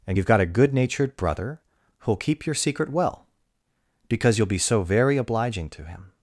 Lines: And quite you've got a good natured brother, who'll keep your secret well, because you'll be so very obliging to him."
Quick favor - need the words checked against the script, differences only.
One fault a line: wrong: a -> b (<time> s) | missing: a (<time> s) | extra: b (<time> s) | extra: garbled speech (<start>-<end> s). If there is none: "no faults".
missing: quite (0.2 s)